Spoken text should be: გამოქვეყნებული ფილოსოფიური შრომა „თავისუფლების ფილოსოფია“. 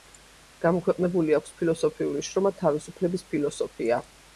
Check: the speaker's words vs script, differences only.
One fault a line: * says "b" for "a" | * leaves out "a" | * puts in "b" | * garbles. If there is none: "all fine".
* puts in "აქვს"